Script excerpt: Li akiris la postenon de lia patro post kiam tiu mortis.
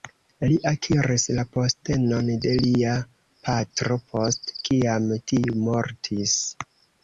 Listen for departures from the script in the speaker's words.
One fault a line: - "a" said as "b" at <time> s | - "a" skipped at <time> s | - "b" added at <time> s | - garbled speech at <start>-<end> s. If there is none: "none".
none